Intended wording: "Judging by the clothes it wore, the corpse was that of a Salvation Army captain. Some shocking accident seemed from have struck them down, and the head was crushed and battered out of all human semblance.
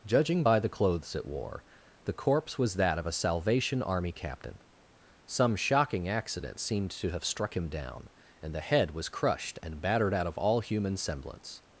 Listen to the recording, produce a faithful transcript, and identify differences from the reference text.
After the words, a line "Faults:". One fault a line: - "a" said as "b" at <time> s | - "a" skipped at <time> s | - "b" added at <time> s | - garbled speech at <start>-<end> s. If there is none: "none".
"Judging by the clothes it wore, the corpse was that of a Salvation Army captain. Some shocking accident seemed to have struck him down, and the head was crushed and battered out of all human semblance.
Faults:
- "from" said as "to" at 6.9 s
- "them" said as "him" at 7.6 s